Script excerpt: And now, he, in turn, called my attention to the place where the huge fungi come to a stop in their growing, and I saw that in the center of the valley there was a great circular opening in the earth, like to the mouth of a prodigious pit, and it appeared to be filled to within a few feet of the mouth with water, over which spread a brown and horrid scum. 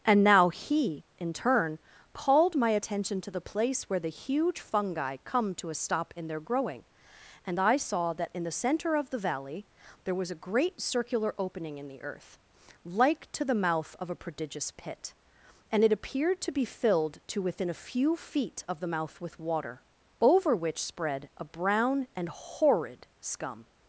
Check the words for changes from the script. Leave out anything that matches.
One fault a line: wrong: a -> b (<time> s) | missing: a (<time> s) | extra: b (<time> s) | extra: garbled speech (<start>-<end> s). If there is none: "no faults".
no faults